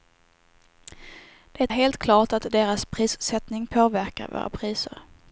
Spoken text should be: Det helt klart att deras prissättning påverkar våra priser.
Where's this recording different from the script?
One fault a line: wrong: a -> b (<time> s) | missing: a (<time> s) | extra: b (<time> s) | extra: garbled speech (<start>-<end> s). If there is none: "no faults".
no faults